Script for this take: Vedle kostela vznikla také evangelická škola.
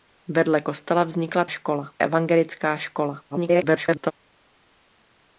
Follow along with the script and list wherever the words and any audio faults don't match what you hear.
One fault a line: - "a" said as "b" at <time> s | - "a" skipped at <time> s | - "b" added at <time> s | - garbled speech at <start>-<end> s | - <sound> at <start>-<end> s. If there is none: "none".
- "také" said as "škola" at 1.5 s
- garbled speech at 3.3-4.1 s